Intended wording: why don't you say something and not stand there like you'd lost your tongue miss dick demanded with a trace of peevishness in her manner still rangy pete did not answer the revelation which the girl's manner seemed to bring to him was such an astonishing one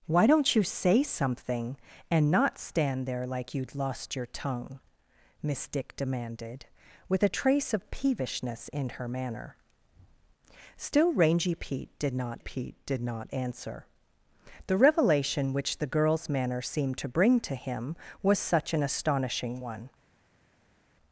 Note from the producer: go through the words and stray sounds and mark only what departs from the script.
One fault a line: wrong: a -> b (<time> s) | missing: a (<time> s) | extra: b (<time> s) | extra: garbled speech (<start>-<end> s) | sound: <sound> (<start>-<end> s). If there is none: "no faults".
extra: pete did not (12.4 s)